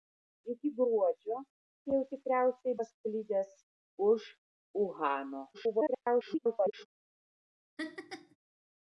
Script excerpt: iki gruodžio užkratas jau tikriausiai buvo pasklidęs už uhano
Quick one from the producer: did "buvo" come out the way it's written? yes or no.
no